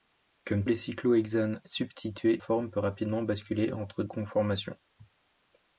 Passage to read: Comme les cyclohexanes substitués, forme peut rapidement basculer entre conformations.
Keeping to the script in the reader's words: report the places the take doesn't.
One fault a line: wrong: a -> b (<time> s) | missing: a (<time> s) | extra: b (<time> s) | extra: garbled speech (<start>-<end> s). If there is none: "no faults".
no faults